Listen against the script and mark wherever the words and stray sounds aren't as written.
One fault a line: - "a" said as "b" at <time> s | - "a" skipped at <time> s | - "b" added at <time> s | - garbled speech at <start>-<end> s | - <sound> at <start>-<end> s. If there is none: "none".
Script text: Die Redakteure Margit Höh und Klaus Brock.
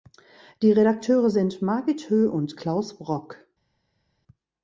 - "sind" added at 1.3 s